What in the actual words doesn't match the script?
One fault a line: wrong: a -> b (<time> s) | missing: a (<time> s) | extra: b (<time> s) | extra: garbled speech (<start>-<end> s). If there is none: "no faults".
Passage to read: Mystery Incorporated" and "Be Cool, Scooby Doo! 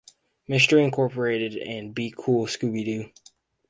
no faults